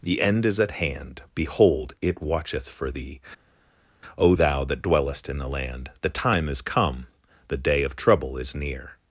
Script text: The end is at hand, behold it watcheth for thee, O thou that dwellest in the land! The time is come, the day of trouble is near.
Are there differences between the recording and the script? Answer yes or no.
no